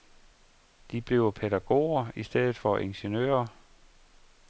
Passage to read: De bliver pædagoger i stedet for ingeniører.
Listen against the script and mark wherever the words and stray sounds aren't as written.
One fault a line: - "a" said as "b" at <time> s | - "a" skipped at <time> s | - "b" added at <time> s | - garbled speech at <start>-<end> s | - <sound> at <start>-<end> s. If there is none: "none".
none